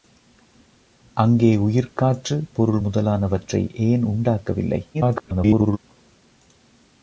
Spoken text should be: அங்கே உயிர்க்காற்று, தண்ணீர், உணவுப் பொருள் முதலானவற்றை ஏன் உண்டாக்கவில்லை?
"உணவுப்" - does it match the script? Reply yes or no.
no